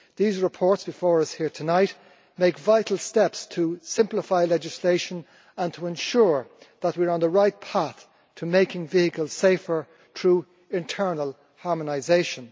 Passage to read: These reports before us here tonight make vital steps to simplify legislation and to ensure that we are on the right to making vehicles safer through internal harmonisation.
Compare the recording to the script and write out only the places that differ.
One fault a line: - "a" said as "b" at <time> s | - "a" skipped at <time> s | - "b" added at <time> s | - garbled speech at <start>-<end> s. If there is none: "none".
- "path" added at 7.6 s